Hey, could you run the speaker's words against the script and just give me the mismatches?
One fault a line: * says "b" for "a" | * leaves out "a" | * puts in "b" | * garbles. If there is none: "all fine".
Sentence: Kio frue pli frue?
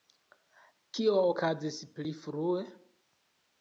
* says "okazis" for "frue"